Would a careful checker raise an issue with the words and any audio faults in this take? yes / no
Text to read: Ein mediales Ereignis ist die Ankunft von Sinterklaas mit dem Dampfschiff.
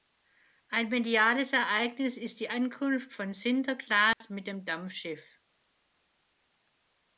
yes